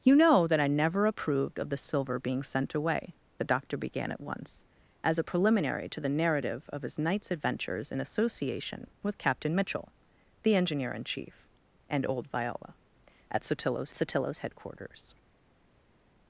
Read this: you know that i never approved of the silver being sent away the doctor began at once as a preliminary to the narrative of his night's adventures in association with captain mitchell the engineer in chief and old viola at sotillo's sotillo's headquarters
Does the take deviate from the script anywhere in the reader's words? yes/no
no